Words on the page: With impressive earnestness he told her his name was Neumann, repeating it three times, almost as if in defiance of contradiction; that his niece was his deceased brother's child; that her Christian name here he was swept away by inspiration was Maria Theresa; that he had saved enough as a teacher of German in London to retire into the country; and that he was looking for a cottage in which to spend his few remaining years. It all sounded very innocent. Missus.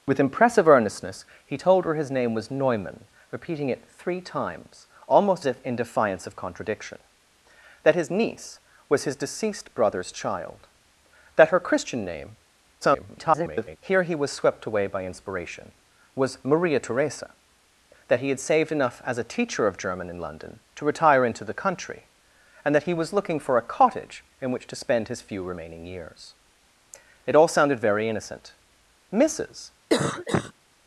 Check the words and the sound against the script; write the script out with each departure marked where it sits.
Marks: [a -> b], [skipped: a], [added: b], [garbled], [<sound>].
With impressive earnestness he told her his name was Neumann, repeating it three times, almost [skipped: as] if in defiance of contradiction; that his niece was his deceased brother's child; that her Christian name [garbled] here he was swept away by inspiration was Maria Theresa; that he had saved enough as a teacher of German in London to retire into the country; and that he was looking for a cottage in which to spend his few remaining years. It all sounded very innocent. Missus. [cough]